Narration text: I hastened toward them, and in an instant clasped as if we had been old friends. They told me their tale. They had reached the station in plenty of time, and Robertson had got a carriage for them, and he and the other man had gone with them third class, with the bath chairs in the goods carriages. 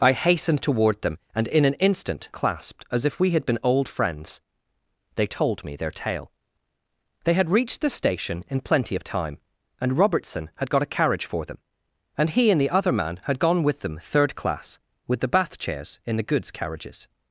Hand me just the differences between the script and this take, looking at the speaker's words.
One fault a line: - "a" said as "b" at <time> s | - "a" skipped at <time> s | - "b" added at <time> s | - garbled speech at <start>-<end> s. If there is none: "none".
none